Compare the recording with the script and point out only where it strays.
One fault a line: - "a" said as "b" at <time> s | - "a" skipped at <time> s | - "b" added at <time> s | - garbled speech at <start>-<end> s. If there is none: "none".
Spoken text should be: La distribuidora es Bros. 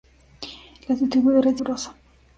none